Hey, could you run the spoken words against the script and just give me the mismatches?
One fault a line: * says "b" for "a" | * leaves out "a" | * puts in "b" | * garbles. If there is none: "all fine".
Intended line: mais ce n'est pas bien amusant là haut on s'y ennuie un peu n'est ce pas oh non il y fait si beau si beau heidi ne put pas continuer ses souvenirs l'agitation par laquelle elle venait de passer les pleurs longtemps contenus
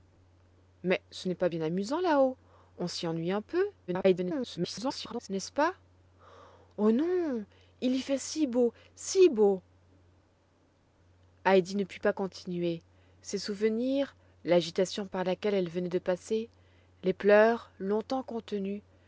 * garbles